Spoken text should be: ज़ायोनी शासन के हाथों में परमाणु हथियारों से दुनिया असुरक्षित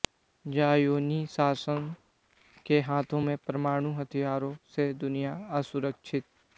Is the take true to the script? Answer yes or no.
yes